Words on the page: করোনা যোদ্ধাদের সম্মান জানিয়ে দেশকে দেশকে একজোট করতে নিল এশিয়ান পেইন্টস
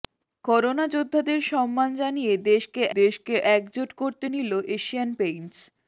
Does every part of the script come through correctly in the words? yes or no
yes